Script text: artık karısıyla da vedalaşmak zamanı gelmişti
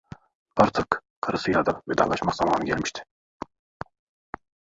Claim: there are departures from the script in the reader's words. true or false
false